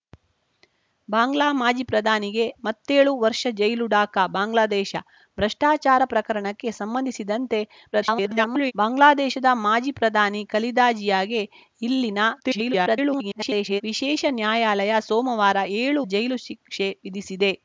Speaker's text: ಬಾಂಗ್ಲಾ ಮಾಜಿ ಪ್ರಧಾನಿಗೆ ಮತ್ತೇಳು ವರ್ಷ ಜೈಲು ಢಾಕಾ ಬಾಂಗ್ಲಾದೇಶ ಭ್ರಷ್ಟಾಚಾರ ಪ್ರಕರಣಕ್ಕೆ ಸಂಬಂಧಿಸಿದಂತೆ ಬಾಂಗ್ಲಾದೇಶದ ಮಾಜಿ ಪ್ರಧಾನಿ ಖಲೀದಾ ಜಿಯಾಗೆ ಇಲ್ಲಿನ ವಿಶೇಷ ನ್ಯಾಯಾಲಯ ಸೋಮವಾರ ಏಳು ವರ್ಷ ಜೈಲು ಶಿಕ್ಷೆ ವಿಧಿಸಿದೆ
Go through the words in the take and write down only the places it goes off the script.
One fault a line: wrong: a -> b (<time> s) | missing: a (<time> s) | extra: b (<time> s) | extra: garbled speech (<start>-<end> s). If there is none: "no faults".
extra: garbled speech (7.9-8.7 s)
extra: garbled speech (12.4-13.8 s)
missing: ವರ್ಷ (16.0 s)